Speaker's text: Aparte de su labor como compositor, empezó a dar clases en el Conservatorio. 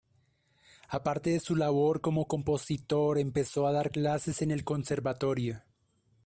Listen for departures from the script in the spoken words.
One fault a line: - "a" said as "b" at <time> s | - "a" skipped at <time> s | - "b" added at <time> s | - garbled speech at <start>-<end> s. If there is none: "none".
none